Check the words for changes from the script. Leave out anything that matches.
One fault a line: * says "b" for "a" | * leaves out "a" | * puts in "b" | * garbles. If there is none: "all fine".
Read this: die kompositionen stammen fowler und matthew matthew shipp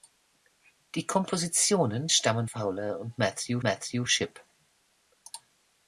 all fine